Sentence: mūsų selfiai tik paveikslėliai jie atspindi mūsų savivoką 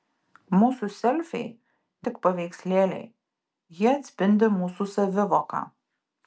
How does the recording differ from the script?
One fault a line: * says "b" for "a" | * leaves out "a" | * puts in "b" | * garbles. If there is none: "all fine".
all fine